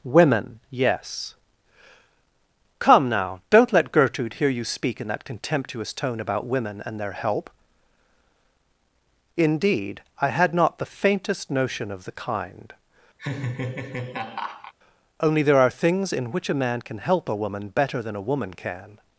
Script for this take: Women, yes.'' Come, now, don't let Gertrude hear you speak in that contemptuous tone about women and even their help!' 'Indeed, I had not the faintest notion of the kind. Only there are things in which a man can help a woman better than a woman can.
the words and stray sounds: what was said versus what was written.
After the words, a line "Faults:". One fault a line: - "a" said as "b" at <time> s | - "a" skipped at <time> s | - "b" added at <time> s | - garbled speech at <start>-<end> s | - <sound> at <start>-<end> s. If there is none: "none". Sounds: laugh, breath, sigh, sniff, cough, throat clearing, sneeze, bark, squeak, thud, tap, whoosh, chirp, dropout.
Women, yes.'' Come, now, don't let Gertrude hear you speak in that contemptuous tone about women and their help!' 'Indeed, I had not the faintest notion of the kind. Only there are things in which a man can help a woman better than a woman can.
Faults:
- "even" skipped at 7.0 s
- laugh at 13.2-14.7 s